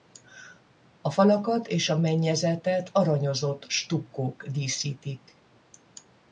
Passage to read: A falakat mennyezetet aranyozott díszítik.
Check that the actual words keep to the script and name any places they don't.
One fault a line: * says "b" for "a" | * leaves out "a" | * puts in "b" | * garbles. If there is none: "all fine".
* puts in "és a"
* puts in "stukkók"